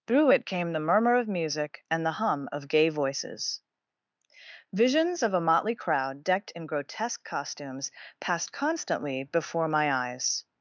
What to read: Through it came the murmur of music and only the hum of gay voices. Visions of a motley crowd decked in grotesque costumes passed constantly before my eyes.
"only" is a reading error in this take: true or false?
true